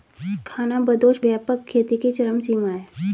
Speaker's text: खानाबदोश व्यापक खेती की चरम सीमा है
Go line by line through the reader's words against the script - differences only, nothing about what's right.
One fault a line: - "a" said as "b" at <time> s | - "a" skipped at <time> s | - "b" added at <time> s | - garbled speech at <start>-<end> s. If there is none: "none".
none